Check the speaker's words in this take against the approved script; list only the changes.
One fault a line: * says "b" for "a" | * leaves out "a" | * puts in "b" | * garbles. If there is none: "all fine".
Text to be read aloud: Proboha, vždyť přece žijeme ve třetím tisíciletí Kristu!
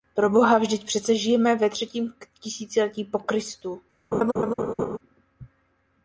* puts in "po"